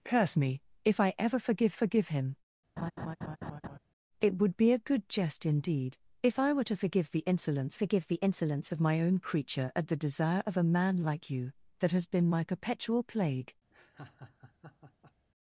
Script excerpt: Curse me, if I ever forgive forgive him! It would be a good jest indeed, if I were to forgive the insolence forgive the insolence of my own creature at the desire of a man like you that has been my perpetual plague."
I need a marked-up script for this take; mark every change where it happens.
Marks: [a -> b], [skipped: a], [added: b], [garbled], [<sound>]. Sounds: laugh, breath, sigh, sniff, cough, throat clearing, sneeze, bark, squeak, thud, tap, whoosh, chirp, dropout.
Curse me, if I ever forgive forgive him! [laugh] It would be a good jest indeed, if I were to forgive the insolence forgive the insolence of my own creature at the desire of a man like you that has been my perpetual plague." [laugh]